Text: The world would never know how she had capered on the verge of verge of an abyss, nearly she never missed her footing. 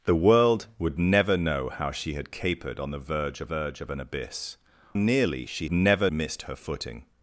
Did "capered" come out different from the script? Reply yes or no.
no